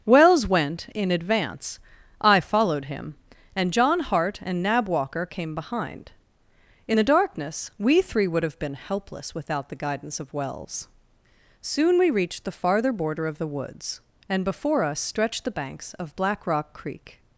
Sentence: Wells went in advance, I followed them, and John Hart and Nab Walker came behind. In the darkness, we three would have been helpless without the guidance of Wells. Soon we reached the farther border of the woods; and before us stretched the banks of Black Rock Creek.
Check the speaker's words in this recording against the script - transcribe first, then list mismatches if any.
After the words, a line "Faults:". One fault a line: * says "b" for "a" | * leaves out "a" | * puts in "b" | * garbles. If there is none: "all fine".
Wells went in advance, I followed him, and John Hart and Nab Walker came behind. In the darkness, we three would have been helpless without the guidance of Wells. Soon we reached the farther border of the woods; and before us stretched the banks of Black Rock Creek.
Faults:
* says "him" for "them"